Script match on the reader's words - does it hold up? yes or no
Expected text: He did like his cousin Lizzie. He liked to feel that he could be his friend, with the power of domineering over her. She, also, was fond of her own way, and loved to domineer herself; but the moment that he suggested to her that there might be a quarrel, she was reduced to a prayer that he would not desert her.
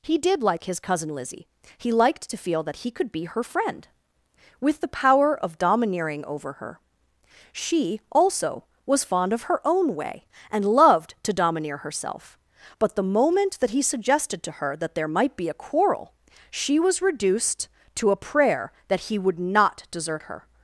no